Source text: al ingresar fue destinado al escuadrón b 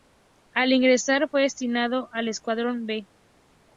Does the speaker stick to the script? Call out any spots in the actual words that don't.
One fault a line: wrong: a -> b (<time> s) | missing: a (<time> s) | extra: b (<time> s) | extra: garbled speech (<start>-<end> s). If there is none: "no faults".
no faults